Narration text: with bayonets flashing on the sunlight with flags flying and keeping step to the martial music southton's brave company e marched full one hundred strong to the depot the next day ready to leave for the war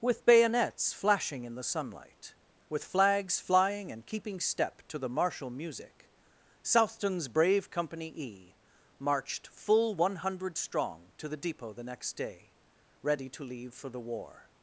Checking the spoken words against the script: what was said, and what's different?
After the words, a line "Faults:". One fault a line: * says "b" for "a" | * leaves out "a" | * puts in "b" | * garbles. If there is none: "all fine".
with bayonets flashing in the sunlight with flags flying and keeping step to the martial music southton's brave company e marched full one hundred strong to the depot the next day ready to leave for the war
Faults:
* says "in" for "on"